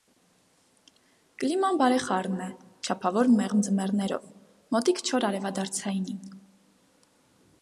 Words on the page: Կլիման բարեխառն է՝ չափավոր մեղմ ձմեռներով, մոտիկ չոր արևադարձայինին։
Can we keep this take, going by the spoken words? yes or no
yes